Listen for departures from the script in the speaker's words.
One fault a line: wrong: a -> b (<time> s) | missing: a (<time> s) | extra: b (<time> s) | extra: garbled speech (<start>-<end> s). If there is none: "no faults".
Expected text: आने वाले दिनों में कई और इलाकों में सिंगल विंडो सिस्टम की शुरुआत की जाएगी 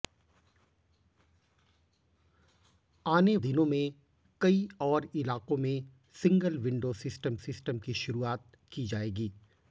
missing: वाले (3.4 s)
extra: सिस्टम (7.4 s)